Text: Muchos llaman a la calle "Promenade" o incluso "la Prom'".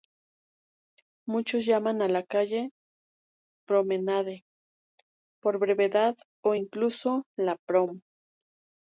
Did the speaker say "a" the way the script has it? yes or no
yes